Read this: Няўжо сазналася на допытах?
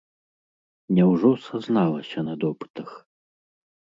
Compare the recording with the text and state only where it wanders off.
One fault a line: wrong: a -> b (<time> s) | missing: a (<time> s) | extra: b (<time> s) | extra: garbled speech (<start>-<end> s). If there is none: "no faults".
no faults